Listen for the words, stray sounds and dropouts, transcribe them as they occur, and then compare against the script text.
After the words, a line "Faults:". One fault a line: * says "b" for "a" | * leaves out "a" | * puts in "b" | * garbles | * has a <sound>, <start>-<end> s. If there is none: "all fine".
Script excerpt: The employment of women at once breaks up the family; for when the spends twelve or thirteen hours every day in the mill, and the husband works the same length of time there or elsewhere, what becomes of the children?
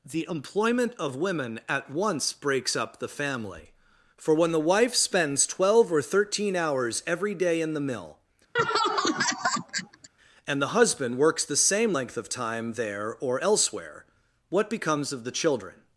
The employment of women at once breaks up the family; for when the wife spends twelve or thirteen hours every day in the mill, and the husband works the same length of time there or elsewhere, what becomes of the children?
Faults:
* puts in "wife"
* has a laugh, 8.6-10.1 s